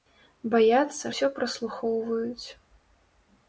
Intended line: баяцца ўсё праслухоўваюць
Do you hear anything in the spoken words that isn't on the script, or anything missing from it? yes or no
no